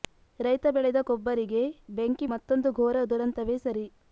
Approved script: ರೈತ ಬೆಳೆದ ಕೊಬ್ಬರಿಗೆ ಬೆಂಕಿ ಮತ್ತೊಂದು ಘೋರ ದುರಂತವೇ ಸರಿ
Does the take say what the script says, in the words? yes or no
yes